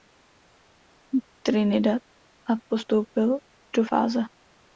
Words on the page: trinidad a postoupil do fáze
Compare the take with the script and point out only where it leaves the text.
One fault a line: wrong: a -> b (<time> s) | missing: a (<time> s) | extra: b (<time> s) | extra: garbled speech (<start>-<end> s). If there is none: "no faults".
no faults